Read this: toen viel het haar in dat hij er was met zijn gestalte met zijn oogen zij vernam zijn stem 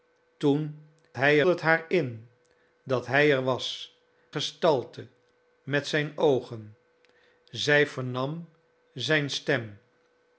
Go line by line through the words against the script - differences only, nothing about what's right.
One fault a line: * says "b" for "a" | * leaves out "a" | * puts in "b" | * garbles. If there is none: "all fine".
* says "hij" for "viel"
* leaves out "met zijn"